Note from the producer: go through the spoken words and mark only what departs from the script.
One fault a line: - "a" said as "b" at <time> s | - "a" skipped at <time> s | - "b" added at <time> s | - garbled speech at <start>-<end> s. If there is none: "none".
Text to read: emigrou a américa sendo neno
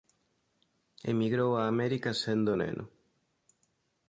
none